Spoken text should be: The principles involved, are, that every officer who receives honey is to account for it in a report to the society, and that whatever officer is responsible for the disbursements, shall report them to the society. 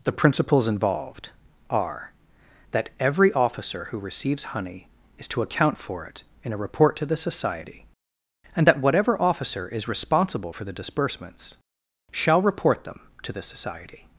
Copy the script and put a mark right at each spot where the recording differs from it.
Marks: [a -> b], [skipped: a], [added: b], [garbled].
The principles involved, are, that every officer who receives honey is to account for it in a report to the society, and that whatever officer is responsible for the disbursements, shall report them to the society.